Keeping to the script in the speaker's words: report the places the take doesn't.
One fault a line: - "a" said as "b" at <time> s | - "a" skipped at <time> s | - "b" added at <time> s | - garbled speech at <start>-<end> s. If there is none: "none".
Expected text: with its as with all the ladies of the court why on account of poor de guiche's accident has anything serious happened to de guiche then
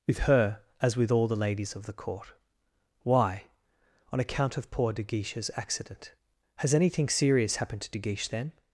- "its" said as "her" at 0.2 s